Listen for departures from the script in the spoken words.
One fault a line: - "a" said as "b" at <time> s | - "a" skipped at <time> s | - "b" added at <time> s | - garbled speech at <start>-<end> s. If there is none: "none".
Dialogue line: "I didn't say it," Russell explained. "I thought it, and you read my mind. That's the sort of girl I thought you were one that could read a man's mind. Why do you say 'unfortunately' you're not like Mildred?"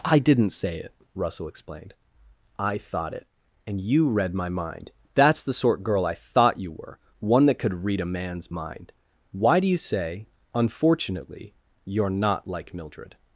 - "of" skipped at 5.8 s